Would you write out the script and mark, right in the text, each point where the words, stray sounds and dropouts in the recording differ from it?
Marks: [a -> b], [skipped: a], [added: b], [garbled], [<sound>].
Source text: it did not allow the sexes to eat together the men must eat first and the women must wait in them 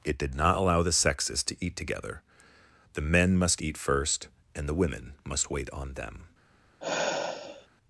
it did not allow the sexes to eat together the men must eat first and the women must wait [in -> on] them [sigh]